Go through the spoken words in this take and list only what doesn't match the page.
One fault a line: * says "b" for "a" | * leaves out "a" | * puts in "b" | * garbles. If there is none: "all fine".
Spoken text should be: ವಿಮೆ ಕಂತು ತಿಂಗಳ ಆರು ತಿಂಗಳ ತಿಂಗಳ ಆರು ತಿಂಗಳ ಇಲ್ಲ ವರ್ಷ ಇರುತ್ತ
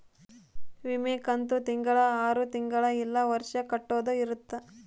* leaves out "ತಿಂಗಳ ಆರು ತಿಂಗಳ"
* puts in "ಕಟ್ಟೋದ"